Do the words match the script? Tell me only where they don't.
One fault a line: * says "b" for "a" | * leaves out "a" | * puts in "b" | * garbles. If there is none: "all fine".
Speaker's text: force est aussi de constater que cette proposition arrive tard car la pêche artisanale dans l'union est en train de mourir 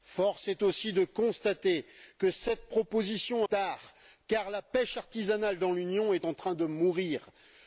* leaves out "arrive"